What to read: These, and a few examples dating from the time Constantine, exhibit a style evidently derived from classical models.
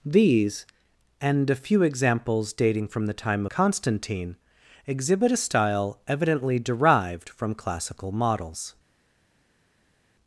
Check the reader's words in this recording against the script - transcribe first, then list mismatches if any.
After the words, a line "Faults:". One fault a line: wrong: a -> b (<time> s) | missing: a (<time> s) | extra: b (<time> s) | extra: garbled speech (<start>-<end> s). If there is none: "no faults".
These, and a few examples dating from the time Constantine, exhibit a style evidently derived from classical models.
Faults:
no faults